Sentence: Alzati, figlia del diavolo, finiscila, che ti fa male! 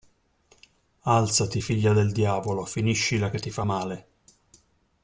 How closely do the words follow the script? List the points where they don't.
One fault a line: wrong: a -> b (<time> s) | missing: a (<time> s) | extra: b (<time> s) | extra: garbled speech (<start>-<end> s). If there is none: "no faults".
no faults